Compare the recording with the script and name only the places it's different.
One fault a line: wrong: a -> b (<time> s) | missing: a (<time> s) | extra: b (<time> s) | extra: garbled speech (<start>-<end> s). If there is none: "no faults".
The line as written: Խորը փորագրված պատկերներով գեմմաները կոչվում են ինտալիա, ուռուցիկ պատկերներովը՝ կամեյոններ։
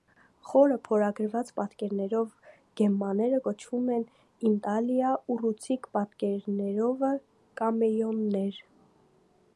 no faults